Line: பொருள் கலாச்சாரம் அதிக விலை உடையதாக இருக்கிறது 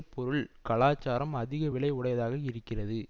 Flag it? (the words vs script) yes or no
no